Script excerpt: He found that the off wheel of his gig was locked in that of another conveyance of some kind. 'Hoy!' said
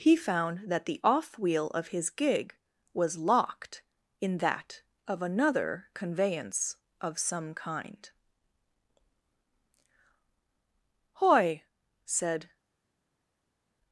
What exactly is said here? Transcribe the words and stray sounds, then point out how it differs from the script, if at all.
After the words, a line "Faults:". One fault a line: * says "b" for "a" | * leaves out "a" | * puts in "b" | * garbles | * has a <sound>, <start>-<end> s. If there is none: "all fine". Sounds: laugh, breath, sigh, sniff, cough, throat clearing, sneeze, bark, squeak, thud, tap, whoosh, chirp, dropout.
He found that the off wheel of his gig was locked in that of another conveyance of some kind. 'Hoy!' said
Faults:
all fine